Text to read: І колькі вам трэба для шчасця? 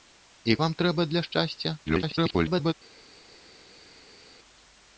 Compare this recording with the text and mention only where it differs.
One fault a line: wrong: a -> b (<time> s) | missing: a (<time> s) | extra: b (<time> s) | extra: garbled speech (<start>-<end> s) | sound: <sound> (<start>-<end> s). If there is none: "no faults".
missing: колькі (0.6 s)
extra: garbled speech (1.8-2.7 s)